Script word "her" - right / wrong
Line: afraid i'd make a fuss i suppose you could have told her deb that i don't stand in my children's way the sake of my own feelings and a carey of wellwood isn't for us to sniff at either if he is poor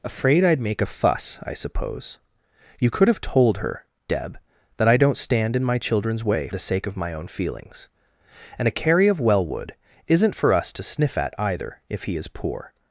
right